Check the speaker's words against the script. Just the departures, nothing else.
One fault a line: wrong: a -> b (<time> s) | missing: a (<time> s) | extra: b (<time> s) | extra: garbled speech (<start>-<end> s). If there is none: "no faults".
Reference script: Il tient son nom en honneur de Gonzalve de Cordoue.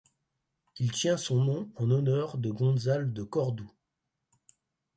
no faults